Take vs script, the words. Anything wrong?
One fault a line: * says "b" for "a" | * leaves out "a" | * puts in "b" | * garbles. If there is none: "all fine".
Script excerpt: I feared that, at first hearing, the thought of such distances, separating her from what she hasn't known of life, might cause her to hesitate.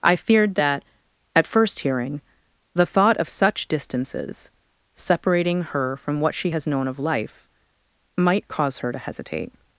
* says "has" for "hasn't"